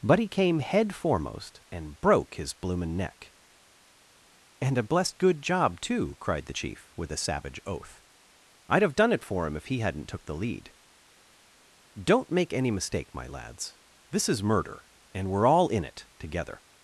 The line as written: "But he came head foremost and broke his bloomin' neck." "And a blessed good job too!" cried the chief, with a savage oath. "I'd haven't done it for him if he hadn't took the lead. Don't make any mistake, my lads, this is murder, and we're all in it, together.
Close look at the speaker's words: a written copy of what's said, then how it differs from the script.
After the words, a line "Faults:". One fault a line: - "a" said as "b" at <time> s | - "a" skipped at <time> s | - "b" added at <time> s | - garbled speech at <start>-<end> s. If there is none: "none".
"But he came head foremost and broke his bloomin' neck." "And a blessed good job too!" cried the chief, with a savage oath. "I'd have done it for him if he hadn't took the lead. Don't make any mistake, my lads, this is murder, and we're all in it, together.
Faults:
- "haven't" said as "have" at 8.8 s